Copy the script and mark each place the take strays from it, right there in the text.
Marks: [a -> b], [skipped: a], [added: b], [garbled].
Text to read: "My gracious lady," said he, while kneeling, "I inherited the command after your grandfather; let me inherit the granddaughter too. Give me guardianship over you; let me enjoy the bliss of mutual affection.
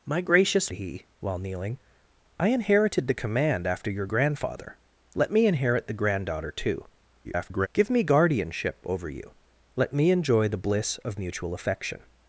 "My gracious [skipped: lady," said] he, while kneeling, "I inherited the command after your grandfather; let me inherit the granddaughter too. [garbled] Give me guardianship over you; let me enjoy the bliss of mutual affection.